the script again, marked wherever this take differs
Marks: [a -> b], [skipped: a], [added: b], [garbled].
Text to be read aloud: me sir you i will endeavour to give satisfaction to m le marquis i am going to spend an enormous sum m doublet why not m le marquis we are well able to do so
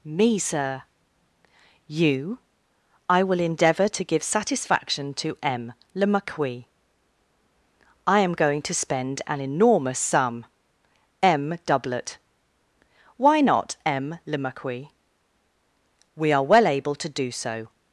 me sir you i will endeavour to give satisfaction to m le marquis i am going to spend an enormous sum m doublet why not m le marquis we are well able to do so